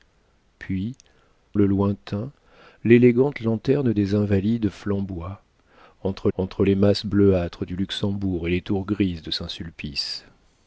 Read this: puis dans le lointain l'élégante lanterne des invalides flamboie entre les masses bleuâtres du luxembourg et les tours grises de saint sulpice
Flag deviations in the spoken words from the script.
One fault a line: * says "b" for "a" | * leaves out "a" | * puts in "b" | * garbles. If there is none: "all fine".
* leaves out "dans"
* puts in "entre"